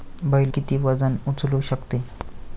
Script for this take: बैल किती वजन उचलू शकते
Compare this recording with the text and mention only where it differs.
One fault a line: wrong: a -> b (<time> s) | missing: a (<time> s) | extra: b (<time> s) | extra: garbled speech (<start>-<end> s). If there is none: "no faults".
no faults